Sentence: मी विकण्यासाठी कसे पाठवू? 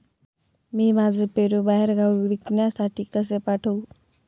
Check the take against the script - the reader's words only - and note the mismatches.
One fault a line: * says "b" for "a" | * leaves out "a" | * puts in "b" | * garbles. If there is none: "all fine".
* puts in "माझे पेरू बाहेरगावी"